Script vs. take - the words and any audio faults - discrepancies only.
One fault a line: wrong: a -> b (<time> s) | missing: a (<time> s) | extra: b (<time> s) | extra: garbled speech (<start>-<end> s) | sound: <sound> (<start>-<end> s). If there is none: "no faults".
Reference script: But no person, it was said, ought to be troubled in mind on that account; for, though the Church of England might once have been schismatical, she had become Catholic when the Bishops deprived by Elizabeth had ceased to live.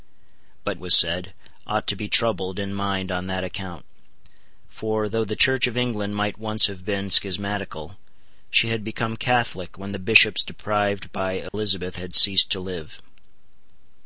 missing: no person it (0.8 s)
sound: dropout (11.5-11.5 s)